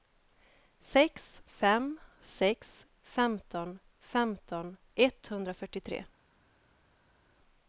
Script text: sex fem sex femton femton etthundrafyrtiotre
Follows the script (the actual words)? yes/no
yes